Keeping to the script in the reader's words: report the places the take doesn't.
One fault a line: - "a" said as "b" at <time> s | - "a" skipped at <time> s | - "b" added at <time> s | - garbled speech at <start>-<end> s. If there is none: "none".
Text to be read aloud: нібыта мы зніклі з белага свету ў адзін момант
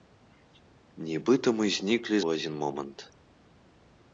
- "з белага свету" skipped at 2.2 s